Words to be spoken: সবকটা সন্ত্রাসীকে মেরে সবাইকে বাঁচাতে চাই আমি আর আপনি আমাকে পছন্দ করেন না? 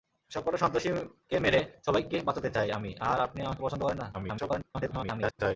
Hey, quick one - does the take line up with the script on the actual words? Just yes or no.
no